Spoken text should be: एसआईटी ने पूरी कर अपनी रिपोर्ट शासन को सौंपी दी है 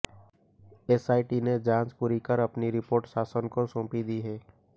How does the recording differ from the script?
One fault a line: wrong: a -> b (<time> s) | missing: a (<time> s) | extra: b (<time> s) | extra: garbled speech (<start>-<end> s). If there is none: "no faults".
extra: जांच (1.6 s)